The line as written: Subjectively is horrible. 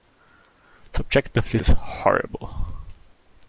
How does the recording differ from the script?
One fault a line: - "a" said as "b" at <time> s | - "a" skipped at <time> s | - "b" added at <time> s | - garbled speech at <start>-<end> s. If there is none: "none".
none